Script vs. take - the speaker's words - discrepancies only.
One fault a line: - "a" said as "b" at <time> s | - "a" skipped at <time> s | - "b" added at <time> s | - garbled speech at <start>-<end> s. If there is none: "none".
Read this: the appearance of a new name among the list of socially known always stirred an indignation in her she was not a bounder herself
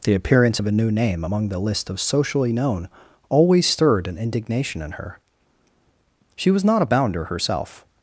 none